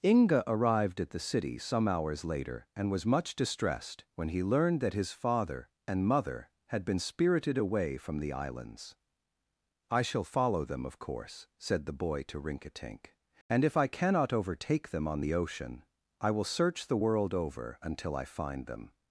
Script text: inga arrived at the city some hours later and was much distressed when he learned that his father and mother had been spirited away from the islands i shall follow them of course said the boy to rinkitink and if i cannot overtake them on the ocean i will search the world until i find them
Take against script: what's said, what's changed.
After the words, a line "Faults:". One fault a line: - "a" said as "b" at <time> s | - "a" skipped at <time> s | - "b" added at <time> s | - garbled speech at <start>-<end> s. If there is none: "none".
inga arrived at the city some hours later and was much distressed when he learned that his father and mother had been spirited away from the islands i shall follow them of course said the boy to rinkitink and if i cannot overtake them on the ocean i will search the world over until i find them
Faults:
- "over" added at 17.3 s